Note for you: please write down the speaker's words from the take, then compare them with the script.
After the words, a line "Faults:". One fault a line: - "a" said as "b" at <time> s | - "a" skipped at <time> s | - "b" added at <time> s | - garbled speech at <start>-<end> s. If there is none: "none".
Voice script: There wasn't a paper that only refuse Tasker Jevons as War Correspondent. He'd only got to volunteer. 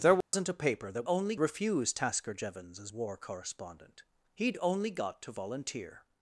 There wasn't a paper that only refuse Tasker Jevons as War Correspondent. He'd only got to volunteer.
Faults:
none